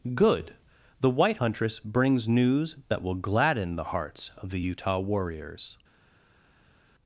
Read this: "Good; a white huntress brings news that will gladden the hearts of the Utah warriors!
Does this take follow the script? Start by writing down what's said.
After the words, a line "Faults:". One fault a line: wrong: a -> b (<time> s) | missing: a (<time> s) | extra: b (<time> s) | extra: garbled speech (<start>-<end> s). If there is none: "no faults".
"Good; the white huntress brings news that will gladden the hearts of the Utah warriors!
Faults:
wrong: a -> the (1.0 s)